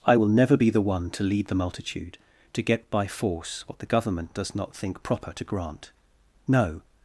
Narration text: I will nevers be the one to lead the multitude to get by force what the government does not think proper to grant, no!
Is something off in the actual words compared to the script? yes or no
yes